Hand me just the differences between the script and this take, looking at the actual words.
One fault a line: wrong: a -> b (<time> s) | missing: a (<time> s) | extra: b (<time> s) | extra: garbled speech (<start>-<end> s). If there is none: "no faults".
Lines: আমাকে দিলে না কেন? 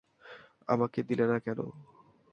no faults